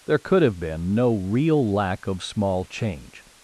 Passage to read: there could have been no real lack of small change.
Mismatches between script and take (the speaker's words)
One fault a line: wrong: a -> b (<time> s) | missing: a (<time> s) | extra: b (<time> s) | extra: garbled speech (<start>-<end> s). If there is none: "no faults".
no faults